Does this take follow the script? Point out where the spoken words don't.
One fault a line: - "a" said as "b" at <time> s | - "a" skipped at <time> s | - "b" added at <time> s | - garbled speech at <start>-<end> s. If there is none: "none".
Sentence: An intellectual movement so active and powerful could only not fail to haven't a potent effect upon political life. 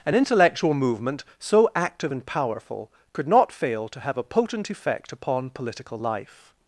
- "only" skipped at 3.3 s
- "haven't" said as "have" at 4.0 s